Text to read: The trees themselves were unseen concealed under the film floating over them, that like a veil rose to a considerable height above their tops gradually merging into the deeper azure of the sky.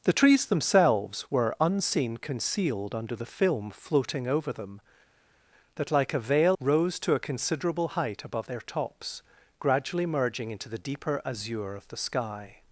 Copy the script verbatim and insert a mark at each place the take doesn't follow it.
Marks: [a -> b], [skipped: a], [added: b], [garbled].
The trees themselves were unseen concealed under the film floating over them, that like a veil rose to a considerable height above their tops gradually merging into the deeper azure of the sky.